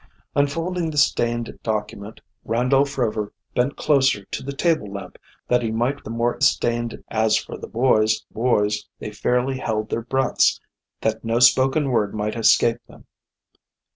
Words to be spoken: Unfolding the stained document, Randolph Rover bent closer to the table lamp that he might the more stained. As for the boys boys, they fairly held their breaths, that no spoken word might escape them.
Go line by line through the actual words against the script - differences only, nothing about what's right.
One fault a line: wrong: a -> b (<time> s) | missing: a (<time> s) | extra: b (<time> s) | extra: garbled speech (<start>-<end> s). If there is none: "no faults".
no faults